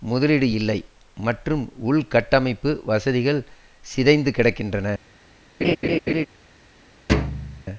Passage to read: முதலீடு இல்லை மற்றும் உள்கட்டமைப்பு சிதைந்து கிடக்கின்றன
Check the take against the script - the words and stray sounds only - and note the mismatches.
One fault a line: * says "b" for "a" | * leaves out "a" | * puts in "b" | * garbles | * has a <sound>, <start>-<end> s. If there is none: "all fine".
* puts in "வசதிகள்"
* has a laugh, 5.6-6.3 s
* has a thud, 7.1-7.6 s